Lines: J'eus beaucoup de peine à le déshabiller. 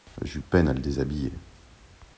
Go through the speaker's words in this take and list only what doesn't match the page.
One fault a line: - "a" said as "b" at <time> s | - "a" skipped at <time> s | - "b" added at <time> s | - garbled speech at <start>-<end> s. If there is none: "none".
- "beaucoup" skipped at 0.4 s